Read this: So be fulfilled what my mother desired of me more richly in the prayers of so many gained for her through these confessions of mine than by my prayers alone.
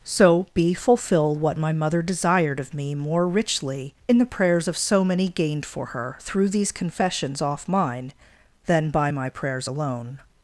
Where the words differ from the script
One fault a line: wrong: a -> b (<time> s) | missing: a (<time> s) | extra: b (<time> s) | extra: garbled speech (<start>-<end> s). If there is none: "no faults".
wrong: fulfilled -> fulfill (0.7 s)
wrong: of -> off (7.4 s)